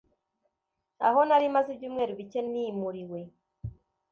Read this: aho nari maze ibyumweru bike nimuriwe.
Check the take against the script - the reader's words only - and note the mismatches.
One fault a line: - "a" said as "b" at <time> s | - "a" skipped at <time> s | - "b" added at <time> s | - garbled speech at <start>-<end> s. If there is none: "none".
none